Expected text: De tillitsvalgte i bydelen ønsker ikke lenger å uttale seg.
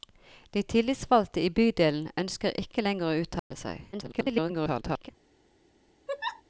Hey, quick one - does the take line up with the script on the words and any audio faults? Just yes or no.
no